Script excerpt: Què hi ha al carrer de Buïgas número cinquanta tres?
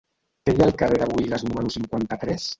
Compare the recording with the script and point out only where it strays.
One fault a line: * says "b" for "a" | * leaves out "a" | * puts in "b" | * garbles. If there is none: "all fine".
all fine